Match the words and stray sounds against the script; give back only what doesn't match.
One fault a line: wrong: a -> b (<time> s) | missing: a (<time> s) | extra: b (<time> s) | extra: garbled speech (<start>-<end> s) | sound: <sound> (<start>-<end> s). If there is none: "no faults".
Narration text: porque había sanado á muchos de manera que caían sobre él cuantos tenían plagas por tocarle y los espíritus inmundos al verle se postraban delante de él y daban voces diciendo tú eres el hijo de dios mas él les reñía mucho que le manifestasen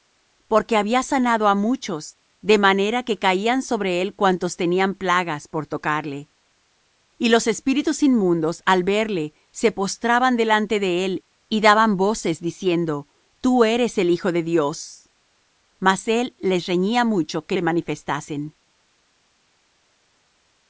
no faults